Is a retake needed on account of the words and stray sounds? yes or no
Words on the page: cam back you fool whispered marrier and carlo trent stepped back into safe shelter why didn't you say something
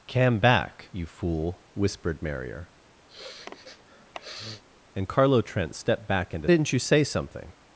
yes